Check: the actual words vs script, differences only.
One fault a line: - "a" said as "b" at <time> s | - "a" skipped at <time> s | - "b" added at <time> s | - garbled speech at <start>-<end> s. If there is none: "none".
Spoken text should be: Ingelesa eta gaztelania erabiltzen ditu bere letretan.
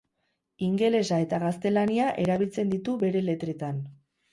none